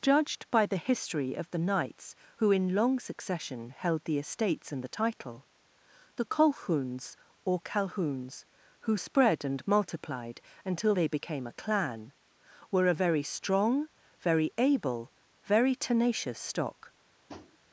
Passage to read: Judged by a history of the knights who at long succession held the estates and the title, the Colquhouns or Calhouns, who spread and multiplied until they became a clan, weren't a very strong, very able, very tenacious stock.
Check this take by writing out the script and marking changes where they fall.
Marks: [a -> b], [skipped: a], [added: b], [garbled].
Judged by [a -> the] history of the knights who [at -> in] long succession held the estates and the title, the Colquhouns or Calhouns, who spread and multiplied until they became a clan, [weren't -> were] a very strong, very able, very tenacious stock.